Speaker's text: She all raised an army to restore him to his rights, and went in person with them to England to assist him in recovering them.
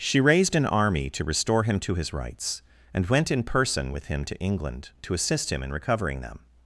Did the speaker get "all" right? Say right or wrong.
wrong